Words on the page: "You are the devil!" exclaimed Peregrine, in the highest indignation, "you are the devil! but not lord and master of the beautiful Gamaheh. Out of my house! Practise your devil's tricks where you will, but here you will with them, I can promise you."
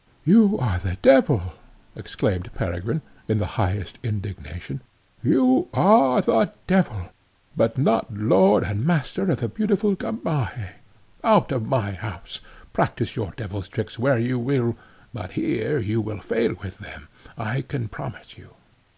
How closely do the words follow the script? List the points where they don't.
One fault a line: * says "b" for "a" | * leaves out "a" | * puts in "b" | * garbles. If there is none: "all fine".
* puts in "fail"